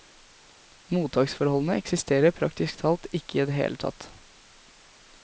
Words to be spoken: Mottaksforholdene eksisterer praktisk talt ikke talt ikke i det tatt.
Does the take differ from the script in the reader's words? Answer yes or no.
yes